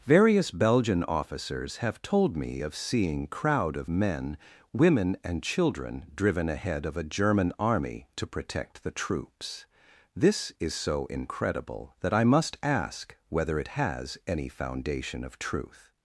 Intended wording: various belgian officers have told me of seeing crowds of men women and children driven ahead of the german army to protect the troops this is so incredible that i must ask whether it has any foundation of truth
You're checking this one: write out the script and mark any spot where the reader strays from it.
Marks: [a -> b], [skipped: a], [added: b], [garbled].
various belgian officers have told me of seeing [crowds -> crowd] of men women and children driven ahead of [the -> a] german army to protect the troops this is so incredible that i must ask whether it has any foundation of truth